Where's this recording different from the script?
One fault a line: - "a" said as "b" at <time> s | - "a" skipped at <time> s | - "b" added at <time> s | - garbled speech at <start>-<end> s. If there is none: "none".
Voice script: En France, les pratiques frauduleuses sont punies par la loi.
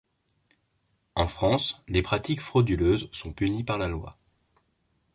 none